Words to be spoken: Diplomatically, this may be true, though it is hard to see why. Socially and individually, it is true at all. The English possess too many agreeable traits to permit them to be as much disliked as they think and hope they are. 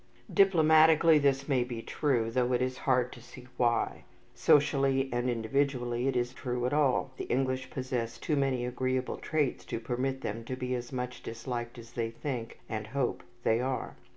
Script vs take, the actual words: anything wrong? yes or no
no